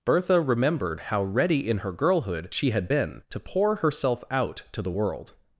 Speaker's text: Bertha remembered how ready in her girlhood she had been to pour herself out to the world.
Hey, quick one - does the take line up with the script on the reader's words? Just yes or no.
yes